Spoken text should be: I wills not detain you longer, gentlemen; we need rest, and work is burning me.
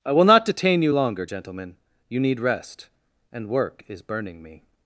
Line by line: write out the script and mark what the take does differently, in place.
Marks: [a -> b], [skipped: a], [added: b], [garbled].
I [wills -> will] not detain you longer, gentlemen; [we -> you] need rest, and work is burning me.